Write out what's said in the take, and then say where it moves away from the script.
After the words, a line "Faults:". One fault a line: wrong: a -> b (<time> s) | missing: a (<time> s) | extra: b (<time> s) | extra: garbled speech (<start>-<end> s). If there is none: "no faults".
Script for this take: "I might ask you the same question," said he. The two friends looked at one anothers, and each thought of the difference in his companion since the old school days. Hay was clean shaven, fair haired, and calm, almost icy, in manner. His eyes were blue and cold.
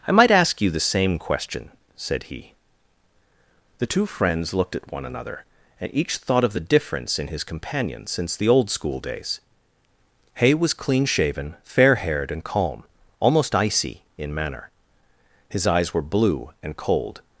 "I might ask you the same question," said he. The two friends looked at one another, and each thought of the difference in his companion since the old school days. Hay was clean shaven, fair haired, and calm, almost icy, in manner. His eyes were blue and cold.
Faults:
wrong: anothers -> another (5.0 s)